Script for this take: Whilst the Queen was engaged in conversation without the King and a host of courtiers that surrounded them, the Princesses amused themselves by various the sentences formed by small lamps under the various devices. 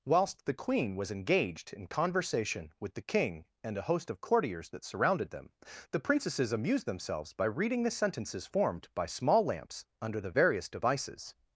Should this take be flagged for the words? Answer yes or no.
yes